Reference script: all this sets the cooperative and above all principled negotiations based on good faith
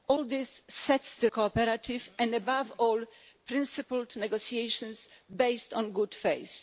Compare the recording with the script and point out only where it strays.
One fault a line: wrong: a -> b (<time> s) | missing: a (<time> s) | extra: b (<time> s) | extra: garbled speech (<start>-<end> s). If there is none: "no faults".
no faults